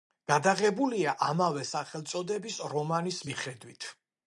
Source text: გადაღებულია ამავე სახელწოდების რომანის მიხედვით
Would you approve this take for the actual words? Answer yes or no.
yes